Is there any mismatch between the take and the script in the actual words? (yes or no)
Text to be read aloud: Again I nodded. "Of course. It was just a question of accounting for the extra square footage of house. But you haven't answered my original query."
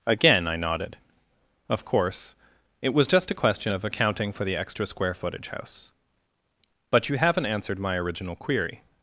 yes